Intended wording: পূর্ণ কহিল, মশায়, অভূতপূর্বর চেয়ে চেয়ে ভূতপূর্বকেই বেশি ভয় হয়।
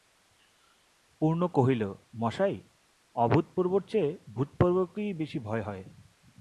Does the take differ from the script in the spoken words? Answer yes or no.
yes